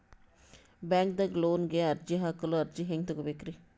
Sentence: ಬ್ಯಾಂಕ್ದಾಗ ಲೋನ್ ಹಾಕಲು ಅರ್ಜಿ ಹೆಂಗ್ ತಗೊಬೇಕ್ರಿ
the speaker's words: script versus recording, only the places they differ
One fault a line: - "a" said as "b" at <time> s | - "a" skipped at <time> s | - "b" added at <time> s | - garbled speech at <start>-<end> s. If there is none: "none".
- "ಗೆ ಅರ್ಜಿ" added at 1.7 s